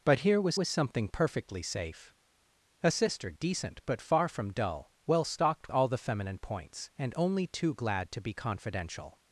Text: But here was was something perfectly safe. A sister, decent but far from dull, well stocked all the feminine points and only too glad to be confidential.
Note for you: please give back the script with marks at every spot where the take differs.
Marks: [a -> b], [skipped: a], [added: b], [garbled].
But here was was something perfectly safe. A sister, decent but far from dull, well stocked all the feminine points and only too glad to be confidential.